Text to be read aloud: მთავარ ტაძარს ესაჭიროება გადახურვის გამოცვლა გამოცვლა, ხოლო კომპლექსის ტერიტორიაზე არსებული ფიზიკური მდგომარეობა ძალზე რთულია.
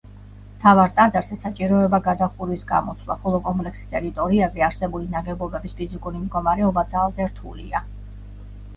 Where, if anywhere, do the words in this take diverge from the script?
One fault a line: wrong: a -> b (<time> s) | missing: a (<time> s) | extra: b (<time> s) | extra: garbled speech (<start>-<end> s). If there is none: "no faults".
missing: გამოცვლა (3.2 s)
extra: ნაგებობების (5.2 s)